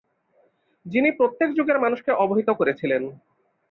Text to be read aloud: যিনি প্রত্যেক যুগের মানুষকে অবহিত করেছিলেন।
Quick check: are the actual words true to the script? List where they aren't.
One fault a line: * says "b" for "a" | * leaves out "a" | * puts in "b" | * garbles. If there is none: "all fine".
all fine